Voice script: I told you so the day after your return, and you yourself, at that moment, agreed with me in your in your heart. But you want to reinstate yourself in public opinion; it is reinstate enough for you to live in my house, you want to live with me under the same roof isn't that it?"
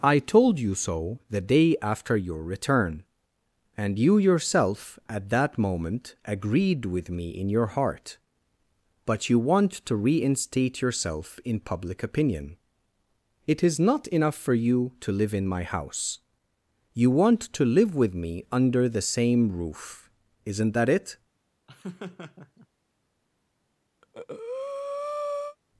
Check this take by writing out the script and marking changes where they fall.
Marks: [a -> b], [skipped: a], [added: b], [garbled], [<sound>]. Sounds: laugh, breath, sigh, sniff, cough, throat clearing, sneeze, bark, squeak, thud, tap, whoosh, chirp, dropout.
I told you so the day after your return, and you yourself, at that moment, agreed with me in your [skipped: in your] heart. But you want to reinstate yourself in public opinion; it is [reinstate -> not] enough for you to live in my house, you want to live with me under the same roof isn't that it?" [laugh] [breath]